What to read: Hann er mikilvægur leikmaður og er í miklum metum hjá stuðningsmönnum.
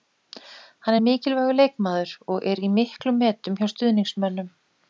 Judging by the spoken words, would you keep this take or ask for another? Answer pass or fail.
pass